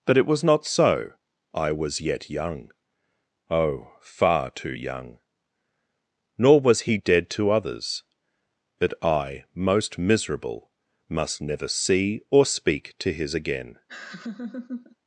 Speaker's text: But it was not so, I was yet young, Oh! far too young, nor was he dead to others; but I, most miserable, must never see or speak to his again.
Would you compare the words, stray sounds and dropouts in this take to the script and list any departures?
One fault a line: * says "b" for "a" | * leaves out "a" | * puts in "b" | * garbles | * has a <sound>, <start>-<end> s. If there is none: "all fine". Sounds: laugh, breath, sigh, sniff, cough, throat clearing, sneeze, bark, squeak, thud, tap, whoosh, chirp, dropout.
* has a laugh, 13.9-15.0 s